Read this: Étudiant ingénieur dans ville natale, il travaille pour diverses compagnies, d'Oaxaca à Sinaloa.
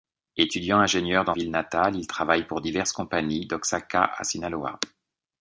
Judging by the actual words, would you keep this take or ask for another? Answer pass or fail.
pass